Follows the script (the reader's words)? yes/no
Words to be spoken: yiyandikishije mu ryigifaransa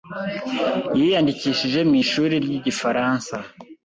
no